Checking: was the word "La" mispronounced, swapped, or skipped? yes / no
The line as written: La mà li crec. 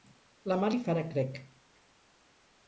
no